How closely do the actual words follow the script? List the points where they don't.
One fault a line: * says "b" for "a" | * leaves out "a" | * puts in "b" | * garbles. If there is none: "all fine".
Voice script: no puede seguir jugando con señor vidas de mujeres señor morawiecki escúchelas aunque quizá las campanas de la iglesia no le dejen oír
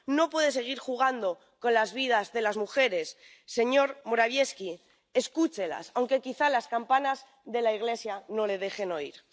* says "las" for "señor"
* puts in "las"